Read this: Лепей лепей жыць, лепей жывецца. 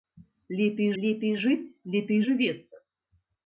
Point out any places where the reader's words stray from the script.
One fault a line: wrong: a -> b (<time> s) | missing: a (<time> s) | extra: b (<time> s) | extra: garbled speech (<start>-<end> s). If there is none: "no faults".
no faults